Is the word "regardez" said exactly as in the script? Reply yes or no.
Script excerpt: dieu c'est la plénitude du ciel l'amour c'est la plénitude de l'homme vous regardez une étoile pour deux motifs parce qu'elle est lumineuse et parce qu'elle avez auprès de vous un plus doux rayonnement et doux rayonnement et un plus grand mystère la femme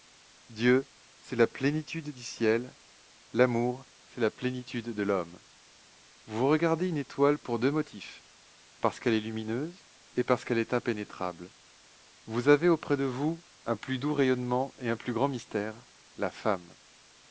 yes